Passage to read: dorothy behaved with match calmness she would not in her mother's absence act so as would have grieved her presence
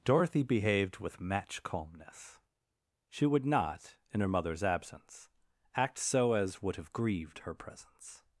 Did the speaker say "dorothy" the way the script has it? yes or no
yes